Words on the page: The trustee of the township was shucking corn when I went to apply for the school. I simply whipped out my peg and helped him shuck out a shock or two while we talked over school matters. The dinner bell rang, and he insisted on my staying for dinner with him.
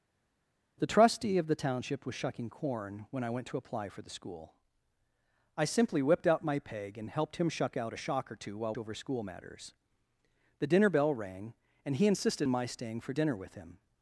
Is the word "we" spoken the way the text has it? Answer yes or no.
no